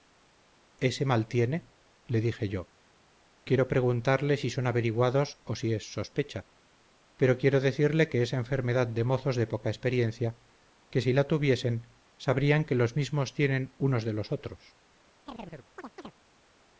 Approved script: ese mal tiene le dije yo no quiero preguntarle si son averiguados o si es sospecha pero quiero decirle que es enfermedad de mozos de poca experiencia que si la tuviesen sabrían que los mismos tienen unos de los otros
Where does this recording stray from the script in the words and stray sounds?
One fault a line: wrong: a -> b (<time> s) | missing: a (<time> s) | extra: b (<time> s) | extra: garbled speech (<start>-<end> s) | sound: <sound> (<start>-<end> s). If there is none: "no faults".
missing: no (2.7 s)
sound: chirp (15.3-16.1 s)